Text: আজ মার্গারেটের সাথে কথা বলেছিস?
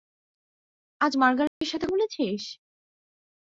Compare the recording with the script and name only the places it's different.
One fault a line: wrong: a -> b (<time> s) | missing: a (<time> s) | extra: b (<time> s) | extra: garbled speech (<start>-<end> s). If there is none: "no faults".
missing: কথা (1.9 s)